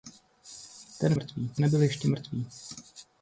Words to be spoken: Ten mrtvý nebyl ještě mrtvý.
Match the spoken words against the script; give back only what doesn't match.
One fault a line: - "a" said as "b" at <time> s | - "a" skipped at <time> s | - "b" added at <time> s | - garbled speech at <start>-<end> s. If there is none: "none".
none